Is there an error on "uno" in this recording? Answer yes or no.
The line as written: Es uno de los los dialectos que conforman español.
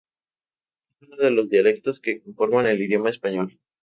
no